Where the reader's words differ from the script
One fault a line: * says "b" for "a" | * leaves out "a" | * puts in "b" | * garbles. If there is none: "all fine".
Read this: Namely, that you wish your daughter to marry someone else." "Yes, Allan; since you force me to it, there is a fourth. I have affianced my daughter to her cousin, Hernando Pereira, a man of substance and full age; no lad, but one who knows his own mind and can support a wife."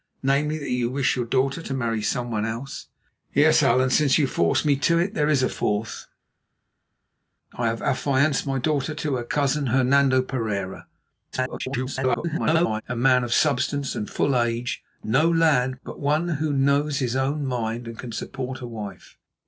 * garbles